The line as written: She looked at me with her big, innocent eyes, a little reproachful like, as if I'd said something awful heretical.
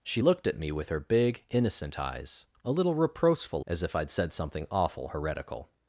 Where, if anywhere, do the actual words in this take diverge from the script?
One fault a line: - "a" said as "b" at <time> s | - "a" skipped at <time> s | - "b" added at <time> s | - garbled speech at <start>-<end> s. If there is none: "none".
- "like" skipped at 3.6 s